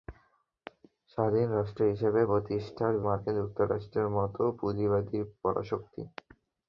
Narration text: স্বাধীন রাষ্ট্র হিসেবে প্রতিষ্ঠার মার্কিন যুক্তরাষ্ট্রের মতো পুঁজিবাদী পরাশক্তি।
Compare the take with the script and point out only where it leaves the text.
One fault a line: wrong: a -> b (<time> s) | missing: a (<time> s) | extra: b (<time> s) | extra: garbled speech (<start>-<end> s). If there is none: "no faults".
no faults